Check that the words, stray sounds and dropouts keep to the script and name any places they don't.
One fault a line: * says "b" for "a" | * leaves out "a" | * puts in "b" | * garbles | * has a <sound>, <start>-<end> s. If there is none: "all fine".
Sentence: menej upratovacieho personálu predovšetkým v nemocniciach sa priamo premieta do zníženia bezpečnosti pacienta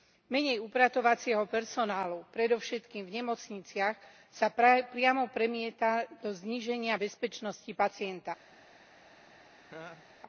* has a laugh, 9.6-10.1 s